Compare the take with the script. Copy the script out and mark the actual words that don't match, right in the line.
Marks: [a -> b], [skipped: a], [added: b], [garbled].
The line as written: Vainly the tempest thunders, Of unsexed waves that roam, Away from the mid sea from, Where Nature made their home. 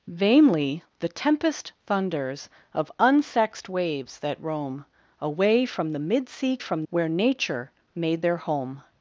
Vainly the tempest thunders, Of unsexed waves that roam, Away from the mid sea from, Where Nature made their home.